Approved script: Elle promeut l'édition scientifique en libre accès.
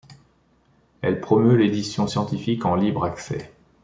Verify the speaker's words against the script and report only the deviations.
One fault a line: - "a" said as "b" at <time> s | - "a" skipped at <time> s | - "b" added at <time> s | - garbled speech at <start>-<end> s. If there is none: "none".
none